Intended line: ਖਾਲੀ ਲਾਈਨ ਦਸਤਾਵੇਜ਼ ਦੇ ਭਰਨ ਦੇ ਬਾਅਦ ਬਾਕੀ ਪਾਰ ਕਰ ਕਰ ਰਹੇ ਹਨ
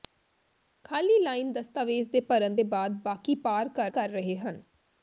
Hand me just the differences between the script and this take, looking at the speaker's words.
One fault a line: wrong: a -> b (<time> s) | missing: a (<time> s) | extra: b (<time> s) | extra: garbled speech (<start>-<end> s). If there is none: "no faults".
no faults